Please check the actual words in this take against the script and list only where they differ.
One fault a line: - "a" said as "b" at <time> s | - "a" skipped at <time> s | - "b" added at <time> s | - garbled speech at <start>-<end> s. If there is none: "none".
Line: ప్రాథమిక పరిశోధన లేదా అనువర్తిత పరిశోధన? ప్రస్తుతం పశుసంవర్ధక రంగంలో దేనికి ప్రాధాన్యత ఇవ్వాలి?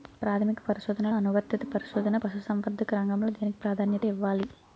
- "లేదా" skipped at 1.1 s
- "ప్రస్తుతం" skipped at 2.2 s